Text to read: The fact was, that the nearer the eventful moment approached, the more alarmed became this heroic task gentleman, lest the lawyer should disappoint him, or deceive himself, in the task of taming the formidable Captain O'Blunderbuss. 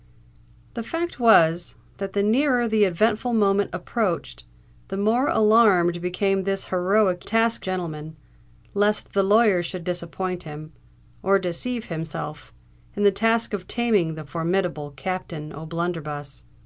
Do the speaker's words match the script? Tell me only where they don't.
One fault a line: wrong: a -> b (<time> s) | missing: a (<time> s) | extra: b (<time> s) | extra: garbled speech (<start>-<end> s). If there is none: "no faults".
no faults